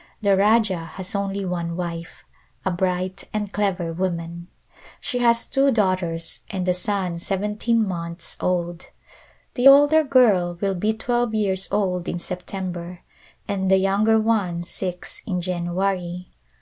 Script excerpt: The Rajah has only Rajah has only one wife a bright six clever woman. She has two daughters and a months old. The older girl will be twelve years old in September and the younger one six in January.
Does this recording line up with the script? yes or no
no